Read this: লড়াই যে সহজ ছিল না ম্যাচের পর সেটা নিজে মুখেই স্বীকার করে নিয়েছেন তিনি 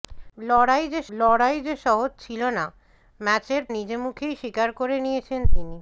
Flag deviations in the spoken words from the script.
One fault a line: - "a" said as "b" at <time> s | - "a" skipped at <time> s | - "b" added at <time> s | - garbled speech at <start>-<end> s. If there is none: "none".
- "লড়াই যে" added at 1.2 s
- "পর সেটা" skipped at 3.6 s